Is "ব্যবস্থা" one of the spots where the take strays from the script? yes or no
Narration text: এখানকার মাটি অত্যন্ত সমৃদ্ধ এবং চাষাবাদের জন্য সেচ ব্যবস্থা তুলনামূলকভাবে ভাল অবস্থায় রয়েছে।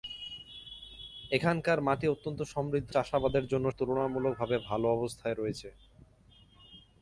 yes